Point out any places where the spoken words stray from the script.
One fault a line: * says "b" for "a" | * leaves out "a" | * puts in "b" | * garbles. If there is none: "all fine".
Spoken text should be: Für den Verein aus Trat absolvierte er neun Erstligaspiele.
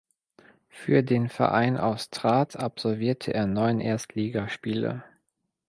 all fine